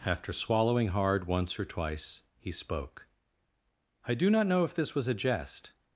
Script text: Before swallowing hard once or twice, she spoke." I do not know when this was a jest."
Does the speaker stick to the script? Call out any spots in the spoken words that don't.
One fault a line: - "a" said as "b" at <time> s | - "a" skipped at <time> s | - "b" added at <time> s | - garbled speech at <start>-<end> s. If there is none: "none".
- "Before" said as "After" at 0.0 s
- "she" said as "he" at 2.4 s
- "when" said as "if" at 4.6 s